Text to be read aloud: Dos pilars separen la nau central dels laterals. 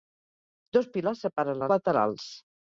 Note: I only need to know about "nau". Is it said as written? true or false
false